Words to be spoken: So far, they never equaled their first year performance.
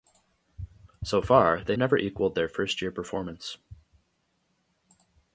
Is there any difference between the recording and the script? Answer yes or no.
no